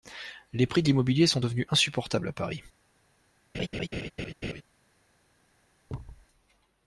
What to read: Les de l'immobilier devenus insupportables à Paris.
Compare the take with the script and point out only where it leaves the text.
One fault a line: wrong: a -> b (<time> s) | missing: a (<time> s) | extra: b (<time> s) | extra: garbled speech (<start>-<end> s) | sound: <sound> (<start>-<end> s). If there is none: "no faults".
extra: prix (0.7 s)
extra: sont (1.3 s)
sound: laugh (3.5-4.6 s)
sound: thud (5.9-6.3 s)